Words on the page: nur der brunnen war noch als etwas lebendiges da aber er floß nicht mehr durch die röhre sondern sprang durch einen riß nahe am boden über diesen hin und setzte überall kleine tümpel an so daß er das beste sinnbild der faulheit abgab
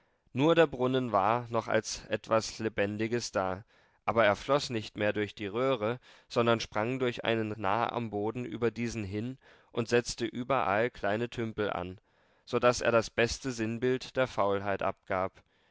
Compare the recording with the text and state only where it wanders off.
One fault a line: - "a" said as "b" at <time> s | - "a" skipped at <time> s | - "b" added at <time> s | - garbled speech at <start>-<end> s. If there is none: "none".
- "riß" skipped at 7.5 s